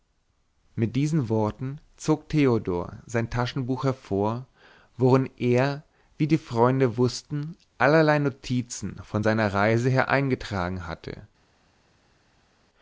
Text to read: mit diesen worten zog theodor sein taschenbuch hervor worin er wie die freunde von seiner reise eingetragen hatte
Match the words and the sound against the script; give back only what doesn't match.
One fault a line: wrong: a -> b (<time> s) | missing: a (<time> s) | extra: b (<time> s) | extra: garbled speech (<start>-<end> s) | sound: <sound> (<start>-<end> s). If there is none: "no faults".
extra: wußten allerlei notizen (7.0 s)
extra: her (9.9 s)